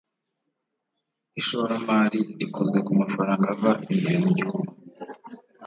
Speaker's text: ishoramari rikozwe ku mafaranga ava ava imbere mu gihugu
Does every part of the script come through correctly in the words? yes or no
no